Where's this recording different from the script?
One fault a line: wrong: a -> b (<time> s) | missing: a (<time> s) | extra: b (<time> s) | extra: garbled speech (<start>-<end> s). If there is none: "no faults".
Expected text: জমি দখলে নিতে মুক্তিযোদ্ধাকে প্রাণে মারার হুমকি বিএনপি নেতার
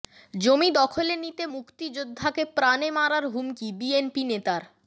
no faults